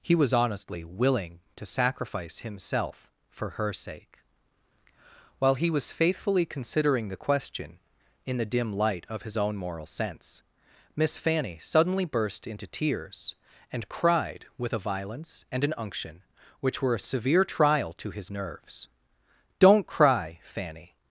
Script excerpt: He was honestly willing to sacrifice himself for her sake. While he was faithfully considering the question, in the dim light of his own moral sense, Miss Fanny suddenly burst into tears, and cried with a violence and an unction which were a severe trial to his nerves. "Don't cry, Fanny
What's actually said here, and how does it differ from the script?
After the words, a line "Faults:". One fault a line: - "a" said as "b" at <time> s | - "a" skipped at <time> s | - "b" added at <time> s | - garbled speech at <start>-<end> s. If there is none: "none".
He was honestly willing to sacrifice himself for her sake. While he was faithfully considering the question, in the dim light of his own moral sense, Miss Fanny suddenly burst into tears, and cried with a violence and an unction which were a severe trial to his nerves. "Don't cry, Fanny
Faults:
none